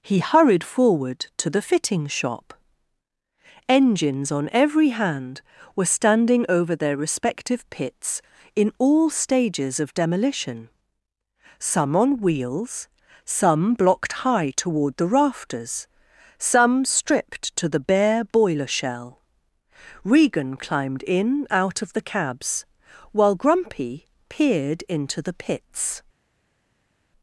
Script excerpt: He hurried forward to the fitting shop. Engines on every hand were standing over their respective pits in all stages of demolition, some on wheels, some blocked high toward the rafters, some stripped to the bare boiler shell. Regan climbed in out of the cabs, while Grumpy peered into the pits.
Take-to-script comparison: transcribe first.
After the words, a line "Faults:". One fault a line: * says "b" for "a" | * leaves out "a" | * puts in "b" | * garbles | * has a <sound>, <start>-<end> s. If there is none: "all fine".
He hurried forward to the fitting shop. Engines on every hand were standing over their respective pits in all stages of demolition, some on wheels, some blocked high toward the rafters, some stripped to the bare boiler shell. Regan climbed in out of the cabs, while Grumpy peered into the pits.
Faults:
all fine